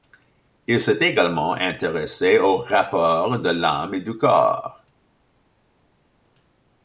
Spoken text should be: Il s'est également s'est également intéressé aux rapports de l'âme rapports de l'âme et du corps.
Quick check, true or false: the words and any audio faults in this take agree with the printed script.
false